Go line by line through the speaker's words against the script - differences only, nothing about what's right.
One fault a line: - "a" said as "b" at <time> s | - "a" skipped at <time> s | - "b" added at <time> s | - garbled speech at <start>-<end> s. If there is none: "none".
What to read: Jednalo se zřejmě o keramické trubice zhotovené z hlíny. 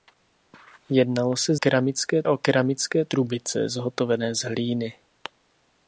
- "zřejmě" said as "keramické" at 1.5 s